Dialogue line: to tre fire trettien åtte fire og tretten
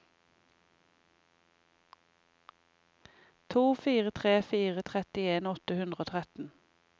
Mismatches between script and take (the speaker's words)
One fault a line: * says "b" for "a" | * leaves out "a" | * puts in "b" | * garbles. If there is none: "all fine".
* puts in "fire"
* says "hundre" for "fire"